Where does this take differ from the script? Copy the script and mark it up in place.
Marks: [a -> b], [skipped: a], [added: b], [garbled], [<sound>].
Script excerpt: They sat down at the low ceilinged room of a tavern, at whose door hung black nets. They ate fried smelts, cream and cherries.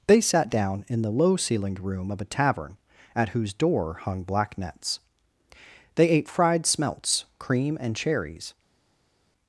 They sat down [at -> in] the low ceilinged room of a tavern, at whose door hung black nets. They ate fried smelts, cream and cherries.